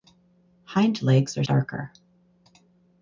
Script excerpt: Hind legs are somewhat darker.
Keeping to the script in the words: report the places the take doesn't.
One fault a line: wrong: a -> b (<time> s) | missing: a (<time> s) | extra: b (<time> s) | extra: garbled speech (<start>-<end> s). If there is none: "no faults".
missing: somewhat (1.4 s)